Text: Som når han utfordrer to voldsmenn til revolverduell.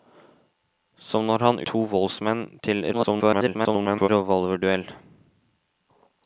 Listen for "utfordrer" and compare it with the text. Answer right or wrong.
wrong